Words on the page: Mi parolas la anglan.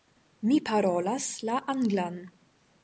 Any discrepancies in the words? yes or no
no